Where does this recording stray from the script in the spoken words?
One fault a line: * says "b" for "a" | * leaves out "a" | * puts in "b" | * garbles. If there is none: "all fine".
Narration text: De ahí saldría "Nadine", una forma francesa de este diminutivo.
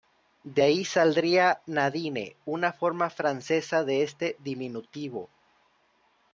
all fine